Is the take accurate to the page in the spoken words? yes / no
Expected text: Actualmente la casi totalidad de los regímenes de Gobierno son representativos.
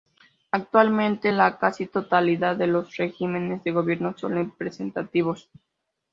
yes